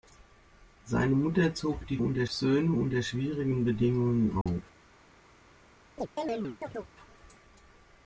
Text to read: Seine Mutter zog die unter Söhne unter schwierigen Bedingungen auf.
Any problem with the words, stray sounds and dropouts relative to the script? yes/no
yes